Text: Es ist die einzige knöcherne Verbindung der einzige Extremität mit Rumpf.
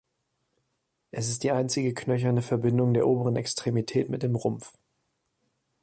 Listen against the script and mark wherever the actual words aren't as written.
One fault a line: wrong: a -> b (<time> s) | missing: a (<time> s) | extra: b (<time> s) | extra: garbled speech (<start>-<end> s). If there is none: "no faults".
wrong: einzige -> oberen (3.0 s)
extra: dem (4.2 s)